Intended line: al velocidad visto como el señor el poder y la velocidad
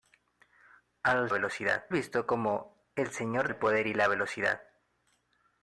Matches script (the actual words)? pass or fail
pass